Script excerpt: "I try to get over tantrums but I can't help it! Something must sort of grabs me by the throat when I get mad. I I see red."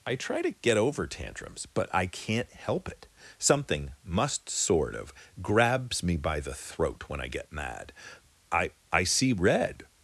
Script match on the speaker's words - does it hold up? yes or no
yes